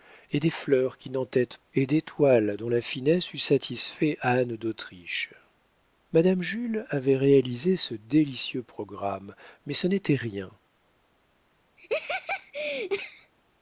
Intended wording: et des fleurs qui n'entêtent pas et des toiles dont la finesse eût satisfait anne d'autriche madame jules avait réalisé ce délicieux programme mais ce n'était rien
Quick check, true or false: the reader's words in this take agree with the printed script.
false